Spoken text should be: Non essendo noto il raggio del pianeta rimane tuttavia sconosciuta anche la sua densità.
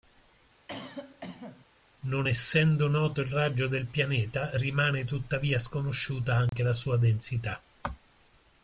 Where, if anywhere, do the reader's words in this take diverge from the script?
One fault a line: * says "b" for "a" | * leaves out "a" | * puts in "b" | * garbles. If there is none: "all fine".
all fine